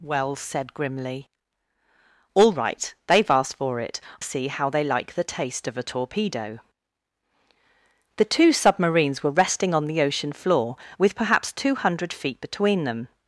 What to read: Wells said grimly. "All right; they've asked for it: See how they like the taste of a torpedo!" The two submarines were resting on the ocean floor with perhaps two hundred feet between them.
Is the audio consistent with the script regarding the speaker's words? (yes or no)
yes